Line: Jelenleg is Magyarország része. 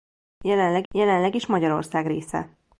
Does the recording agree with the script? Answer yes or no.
no